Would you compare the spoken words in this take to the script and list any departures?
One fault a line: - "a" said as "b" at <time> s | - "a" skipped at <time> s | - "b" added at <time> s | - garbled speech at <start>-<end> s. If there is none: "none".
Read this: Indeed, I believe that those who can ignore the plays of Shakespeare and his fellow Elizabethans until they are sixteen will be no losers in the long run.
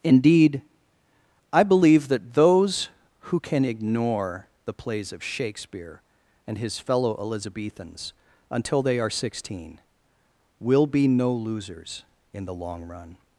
none